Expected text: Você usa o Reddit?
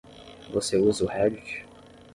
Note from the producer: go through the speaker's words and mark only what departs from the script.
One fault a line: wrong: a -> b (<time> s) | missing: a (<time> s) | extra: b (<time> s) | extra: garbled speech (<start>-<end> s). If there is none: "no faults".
no faults